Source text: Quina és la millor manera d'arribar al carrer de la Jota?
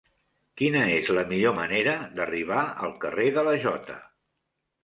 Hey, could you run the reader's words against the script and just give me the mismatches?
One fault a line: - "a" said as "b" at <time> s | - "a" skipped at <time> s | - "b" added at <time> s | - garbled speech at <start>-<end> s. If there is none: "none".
none